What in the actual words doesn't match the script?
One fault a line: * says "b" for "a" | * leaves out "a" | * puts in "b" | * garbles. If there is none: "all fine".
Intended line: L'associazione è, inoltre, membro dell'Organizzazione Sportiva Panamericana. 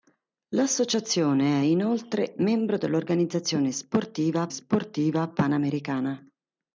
* puts in "Sportiva"